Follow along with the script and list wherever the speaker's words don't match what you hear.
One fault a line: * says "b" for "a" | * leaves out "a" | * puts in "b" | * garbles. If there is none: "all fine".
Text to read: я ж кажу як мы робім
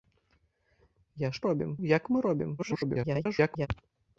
* says "робім" for "кажу"
* garbles